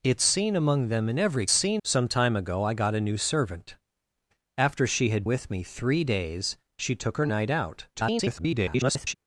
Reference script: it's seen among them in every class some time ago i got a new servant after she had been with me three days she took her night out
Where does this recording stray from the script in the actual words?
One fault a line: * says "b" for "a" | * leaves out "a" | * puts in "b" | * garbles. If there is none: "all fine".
* says "seen" for "class"
* leaves out "been"
* garbles